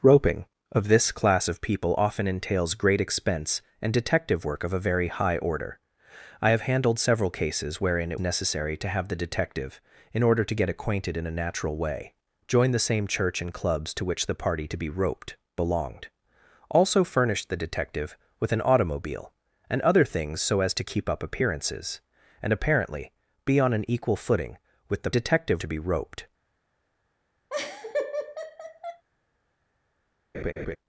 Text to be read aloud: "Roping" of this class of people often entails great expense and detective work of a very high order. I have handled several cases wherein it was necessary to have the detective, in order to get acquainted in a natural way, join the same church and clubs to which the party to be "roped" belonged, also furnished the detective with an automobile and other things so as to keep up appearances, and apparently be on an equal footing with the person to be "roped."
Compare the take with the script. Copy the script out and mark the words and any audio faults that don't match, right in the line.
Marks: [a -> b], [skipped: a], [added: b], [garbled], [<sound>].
"Roping" of this class of people often entails great expense and detective work of a very high order. I have handled several cases wherein it [skipped: was] necessary to have the detective, in order to get acquainted in a natural way, join the same church and clubs to which the party to be "roped" belonged, also furnished the detective with an automobile and other things so as to keep up appearances, and apparently be on an equal footing with the [person -> detective] to be "roped." [laugh] [laugh]